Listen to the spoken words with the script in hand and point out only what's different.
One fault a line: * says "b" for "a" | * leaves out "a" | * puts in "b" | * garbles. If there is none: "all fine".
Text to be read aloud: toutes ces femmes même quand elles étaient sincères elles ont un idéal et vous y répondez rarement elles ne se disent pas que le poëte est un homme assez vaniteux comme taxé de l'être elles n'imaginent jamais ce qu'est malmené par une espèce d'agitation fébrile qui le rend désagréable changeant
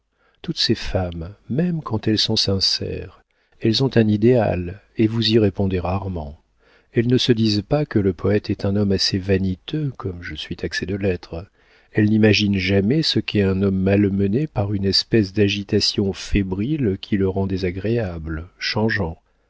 * says "sont" for "étaient"
* puts in "je suis"
* puts in "un homme"